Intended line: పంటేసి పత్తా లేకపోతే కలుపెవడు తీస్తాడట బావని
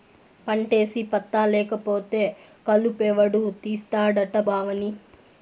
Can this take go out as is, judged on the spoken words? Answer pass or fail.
pass